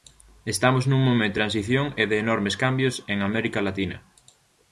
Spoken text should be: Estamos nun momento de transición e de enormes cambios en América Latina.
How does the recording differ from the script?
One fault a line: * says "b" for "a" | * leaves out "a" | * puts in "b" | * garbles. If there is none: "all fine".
* leaves out "de"